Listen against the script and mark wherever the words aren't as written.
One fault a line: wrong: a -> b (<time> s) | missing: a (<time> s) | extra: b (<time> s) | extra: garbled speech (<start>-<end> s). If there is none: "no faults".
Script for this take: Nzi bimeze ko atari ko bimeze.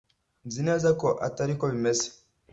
wrong: bimeze -> neza (0.7 s)